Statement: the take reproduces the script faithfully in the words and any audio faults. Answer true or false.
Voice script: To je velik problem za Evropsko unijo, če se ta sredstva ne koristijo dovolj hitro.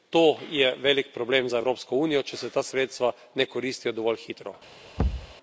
false